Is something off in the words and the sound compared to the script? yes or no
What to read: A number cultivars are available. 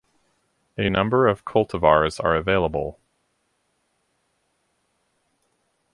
yes